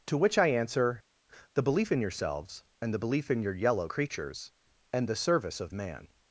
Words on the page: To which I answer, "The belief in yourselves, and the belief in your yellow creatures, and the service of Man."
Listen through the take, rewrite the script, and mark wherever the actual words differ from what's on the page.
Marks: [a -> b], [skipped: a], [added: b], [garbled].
To which I answer, "The belief in yourselves, and the belief in your yellow creatures, and the service of Man."